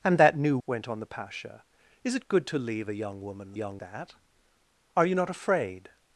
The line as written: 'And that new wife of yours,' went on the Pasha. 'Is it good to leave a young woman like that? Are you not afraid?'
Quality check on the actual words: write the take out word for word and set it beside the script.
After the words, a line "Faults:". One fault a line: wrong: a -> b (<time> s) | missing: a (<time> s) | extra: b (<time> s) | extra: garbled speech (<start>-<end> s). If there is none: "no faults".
'And that new,' went on the Pasha. 'Is it good to leave a young woman young that? Are you not afraid?'
Faults:
missing: wife of yours (0.6 s)
wrong: like -> young (3.5 s)